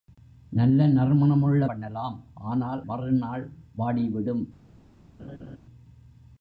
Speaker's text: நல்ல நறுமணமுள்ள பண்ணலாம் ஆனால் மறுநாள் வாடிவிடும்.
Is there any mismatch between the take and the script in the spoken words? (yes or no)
no